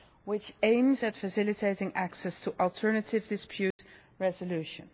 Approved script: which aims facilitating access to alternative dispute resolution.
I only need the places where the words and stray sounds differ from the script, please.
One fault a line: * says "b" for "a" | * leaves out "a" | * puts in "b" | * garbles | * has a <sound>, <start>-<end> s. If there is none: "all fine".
* puts in "at"
* has a dropout, 3.7-3.8 s